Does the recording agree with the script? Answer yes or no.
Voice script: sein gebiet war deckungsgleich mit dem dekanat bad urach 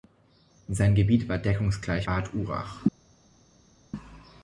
no